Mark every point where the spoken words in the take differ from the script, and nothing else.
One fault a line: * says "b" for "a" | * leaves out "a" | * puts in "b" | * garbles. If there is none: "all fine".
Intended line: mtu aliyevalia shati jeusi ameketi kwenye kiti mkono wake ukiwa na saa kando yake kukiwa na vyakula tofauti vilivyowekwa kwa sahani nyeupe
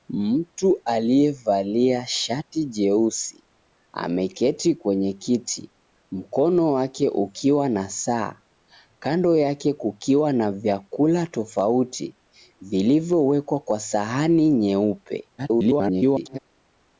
* garbles